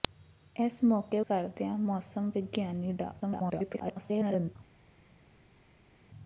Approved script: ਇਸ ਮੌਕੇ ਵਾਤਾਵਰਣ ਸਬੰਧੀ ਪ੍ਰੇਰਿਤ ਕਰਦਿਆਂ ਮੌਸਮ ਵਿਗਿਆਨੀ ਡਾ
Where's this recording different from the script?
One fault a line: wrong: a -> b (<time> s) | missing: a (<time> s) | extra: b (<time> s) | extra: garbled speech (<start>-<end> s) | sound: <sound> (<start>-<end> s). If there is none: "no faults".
missing: ਵਾਤਾਵਰਣ ਸਬੰਧੀ ਪ੍ਰੇਰਿਤ (1.2 s)
extra: garbled speech (3.2-4.6 s)